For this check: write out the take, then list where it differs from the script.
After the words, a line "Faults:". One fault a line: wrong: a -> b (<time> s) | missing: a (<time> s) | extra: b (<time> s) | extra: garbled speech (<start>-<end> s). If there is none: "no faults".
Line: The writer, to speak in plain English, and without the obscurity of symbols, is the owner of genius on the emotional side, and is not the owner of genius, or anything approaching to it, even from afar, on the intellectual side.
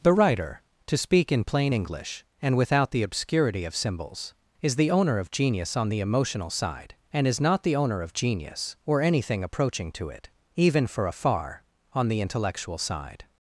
The writer, to speak in plain English, and without the obscurity of symbols, is the owner of genius on the emotional side, and is not the owner of genius, or anything approaching to it, even for afar, on the intellectual side.
Faults:
wrong: from -> for (10.9 s)